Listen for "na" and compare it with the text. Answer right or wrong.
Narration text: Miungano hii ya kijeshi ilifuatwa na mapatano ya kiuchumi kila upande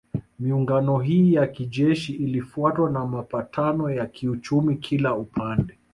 right